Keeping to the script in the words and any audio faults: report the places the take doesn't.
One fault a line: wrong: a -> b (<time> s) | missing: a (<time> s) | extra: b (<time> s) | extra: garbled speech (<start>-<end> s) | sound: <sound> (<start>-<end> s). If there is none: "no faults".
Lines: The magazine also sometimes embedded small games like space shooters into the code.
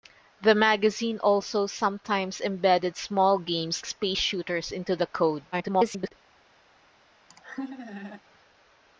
missing: like (3.9 s)
extra: garbled speech (5.5-6.1 s)
sound: laugh (7.3-8.2 s)